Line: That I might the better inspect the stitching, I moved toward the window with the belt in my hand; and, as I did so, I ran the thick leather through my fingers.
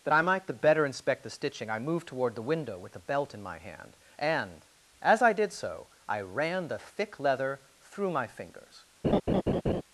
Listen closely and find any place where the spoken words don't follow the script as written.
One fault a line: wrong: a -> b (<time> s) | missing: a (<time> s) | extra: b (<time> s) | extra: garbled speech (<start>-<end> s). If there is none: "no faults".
no faults